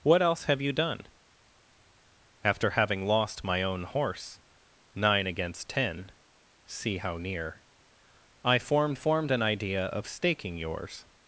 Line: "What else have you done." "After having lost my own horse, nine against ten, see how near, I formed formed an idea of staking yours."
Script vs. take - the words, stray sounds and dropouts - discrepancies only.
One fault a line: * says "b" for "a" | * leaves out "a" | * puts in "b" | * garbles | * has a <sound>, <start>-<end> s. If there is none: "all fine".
all fine